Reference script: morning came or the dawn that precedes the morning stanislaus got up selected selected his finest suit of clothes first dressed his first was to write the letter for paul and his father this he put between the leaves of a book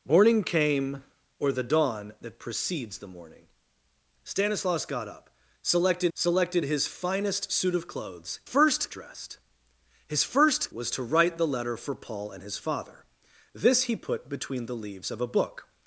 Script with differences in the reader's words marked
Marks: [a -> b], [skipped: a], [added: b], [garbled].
morning came or the dawn that precedes the morning stanislaus got up selected selected his finest suit of clothes first dressed his first was to write the letter for paul and his father this he put between the leaves of a book